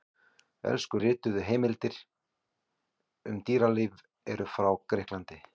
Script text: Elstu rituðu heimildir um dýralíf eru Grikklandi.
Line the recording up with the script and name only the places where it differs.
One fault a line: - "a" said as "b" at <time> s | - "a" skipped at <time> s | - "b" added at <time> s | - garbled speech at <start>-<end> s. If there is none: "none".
- "frá" added at 4.6 s